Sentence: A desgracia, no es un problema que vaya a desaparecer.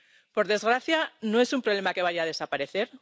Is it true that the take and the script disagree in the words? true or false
true